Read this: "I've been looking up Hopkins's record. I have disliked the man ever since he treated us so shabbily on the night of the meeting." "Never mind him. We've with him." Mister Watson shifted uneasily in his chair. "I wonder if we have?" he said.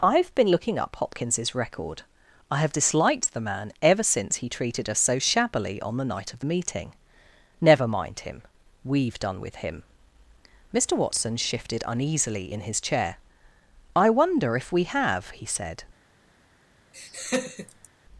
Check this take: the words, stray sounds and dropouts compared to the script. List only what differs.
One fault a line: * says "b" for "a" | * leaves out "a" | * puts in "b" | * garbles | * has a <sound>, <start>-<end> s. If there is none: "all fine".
* puts in "done"
* has a laugh, 16.9-17.9 s